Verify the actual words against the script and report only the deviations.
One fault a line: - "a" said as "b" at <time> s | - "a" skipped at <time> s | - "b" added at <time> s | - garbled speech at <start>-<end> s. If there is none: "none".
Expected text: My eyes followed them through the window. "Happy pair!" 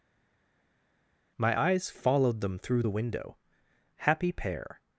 none